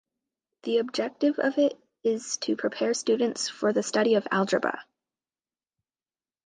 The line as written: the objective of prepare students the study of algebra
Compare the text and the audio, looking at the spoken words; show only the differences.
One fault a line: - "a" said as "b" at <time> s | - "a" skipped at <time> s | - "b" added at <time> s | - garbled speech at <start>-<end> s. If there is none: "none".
- "it is to" added at 1.6 s
- "for" added at 3.5 s